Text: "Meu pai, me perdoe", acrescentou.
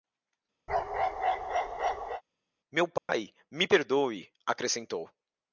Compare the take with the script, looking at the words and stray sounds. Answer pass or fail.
fail